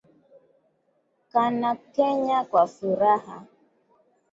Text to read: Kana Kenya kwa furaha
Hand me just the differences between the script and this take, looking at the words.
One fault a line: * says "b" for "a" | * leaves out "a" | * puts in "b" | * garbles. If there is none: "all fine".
all fine